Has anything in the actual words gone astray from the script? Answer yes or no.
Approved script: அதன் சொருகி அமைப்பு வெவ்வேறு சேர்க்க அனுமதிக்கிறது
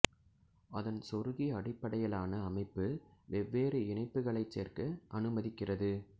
yes